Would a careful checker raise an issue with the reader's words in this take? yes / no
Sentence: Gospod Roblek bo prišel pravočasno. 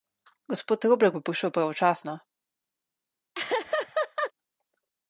no